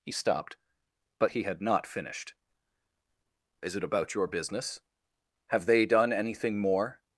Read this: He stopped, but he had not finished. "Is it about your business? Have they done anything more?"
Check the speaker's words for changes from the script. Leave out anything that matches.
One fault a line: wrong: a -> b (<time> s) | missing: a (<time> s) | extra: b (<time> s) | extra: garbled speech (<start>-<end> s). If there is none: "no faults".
no faults